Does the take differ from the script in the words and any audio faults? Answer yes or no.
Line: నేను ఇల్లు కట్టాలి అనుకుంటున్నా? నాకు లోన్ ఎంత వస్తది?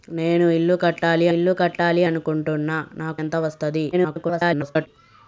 yes